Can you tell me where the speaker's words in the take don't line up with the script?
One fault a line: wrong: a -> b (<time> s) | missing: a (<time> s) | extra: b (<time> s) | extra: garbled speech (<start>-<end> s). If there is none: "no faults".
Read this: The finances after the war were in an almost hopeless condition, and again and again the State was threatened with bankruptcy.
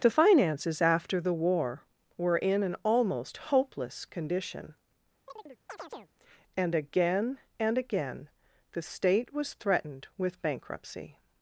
no faults